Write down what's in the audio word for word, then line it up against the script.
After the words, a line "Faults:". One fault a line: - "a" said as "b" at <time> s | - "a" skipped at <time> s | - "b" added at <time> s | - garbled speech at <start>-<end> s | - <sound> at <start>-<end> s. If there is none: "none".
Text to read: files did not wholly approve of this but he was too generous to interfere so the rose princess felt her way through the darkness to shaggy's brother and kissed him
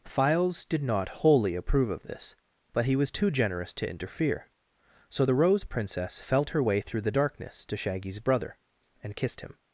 files did not wholly approve of this but he was too generous to interfere so the rose princess felt her way through the darkness to shaggy's brother and kissed him
Faults:
none